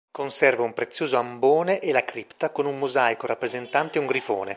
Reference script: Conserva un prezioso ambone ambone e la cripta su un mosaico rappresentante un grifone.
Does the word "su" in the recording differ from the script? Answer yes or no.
yes